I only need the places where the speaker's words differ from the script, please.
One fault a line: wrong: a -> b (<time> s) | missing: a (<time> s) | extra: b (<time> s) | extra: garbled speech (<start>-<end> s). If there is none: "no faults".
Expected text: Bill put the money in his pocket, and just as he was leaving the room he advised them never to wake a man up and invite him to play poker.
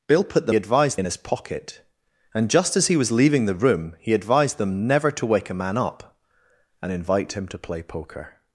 wrong: money -> advised (0.5 s)